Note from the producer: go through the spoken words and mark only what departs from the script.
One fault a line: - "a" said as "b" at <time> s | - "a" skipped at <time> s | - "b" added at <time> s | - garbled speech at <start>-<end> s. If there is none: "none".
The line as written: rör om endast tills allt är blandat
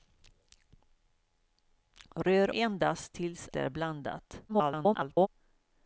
- "om" skipped at 2.5 s
- "allt" skipped at 3.5 s
- garbled speech at 4.5-5.3 s